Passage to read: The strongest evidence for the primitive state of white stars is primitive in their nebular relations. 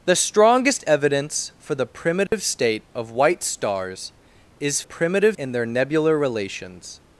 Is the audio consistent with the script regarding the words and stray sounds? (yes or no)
no